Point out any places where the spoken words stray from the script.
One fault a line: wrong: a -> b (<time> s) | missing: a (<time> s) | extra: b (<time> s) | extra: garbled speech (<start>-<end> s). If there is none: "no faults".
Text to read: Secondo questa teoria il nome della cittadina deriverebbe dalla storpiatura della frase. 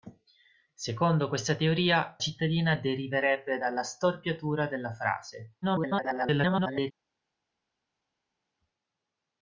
missing: il nome della (2.2 s)
extra: garbled speech (5.6-6.9 s)